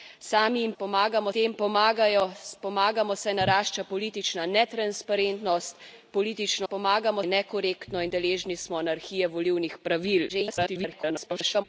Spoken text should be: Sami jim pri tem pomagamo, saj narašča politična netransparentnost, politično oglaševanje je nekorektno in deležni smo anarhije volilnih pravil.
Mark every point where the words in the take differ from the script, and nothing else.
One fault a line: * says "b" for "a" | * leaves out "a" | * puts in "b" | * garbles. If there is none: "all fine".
* says "pomagamo" for "pri"
* says "pomagamo" for "oglaševanje"
* garbles